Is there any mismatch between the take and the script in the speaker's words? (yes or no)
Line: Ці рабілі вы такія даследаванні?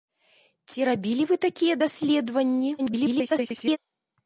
yes